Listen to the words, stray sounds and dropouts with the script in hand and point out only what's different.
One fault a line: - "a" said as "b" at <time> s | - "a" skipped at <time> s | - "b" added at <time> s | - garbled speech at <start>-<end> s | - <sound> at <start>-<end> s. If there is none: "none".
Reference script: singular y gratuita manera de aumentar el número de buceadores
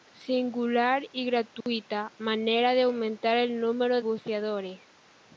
- dropout at 1.6-1.7 s
- "de" skipped at 4.0 s